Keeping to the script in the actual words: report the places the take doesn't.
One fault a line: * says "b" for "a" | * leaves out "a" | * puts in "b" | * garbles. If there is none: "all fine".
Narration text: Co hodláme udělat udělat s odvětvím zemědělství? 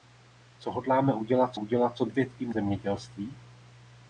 all fine